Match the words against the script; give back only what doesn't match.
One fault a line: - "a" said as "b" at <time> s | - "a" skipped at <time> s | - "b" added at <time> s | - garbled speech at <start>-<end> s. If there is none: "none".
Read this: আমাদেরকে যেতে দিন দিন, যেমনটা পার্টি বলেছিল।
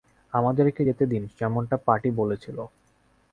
- "দিন" skipped at 1.2 s